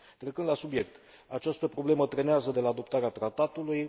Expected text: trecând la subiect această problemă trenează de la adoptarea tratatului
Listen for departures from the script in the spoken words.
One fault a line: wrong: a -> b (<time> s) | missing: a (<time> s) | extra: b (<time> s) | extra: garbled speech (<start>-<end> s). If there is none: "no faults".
no faults